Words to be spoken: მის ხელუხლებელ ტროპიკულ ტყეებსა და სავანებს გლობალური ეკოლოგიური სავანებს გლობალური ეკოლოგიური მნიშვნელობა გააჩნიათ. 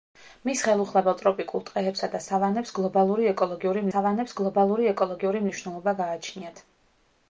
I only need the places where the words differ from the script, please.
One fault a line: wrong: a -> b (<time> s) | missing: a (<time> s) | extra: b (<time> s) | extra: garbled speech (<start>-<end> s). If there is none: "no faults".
no faults